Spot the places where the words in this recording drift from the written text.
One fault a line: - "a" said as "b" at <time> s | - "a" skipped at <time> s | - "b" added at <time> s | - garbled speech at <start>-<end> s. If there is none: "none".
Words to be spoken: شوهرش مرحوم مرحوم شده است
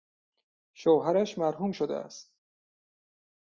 - "مرحوم" skipped at 1.7 s